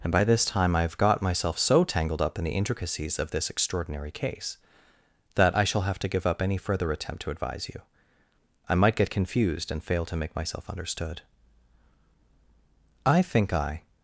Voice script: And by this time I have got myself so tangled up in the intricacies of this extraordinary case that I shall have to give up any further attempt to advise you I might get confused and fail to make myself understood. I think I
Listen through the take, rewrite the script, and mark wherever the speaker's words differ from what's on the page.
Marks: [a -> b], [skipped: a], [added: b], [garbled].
And by this time I have got myself so tangled up in the intricacies of this extraordinary case that I shall have to give up any further attempt to advise you I might get confused and fail to make myself understood. I think I